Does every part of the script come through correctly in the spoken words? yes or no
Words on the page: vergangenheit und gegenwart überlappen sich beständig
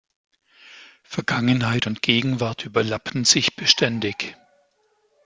yes